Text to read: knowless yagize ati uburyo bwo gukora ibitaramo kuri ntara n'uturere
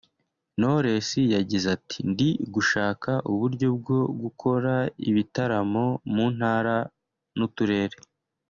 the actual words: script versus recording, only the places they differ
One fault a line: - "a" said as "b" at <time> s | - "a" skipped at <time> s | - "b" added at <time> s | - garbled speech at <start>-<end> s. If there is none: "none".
- "ndi gushaka" added at 2.1 s
- "kuri" said as "mu" at 6.1 s